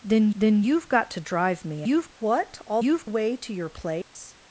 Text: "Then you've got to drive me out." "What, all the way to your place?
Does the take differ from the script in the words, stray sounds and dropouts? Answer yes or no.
yes